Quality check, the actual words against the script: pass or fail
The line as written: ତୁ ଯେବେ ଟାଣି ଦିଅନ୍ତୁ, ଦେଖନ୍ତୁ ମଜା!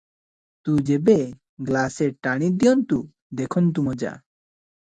fail